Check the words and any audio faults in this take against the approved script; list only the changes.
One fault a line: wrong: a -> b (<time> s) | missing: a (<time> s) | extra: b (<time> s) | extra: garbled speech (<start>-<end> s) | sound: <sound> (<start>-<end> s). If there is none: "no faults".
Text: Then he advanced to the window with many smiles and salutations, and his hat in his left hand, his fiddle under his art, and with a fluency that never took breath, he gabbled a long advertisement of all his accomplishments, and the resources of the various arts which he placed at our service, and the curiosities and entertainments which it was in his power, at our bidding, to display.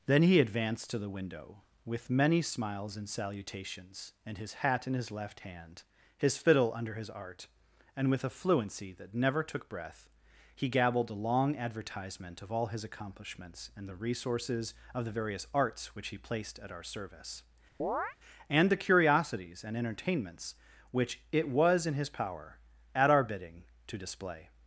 sound: chirp (17.8-18.2 s)